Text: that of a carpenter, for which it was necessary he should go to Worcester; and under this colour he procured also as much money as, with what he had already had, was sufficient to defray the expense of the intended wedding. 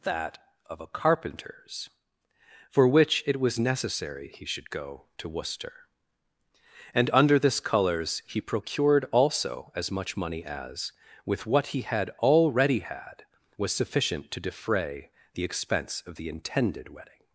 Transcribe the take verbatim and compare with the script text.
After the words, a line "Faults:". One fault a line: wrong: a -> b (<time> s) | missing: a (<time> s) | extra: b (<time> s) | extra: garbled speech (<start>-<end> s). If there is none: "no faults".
that of a carpenters, for which it was necessary he should go to Worcester; and under this colours he procured also as much money as, with what he had already had, was sufficient to defray the expense of the intended wedding.
Faults:
wrong: carpenter -> carpenters (0.9 s)
wrong: colour -> colours (7.6 s)